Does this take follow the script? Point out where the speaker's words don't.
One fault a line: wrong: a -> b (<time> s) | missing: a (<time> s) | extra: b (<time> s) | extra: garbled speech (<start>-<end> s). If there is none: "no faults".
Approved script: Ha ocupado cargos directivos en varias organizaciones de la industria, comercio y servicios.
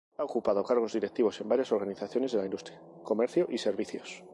no faults